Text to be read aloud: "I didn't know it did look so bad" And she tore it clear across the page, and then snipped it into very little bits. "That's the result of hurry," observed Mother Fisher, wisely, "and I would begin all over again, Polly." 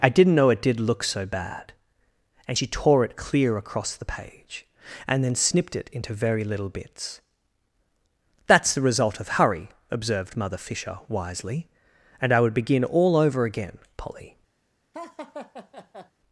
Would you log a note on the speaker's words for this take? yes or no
no